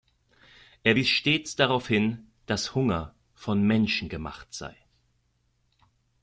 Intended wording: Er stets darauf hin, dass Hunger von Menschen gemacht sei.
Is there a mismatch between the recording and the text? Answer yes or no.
yes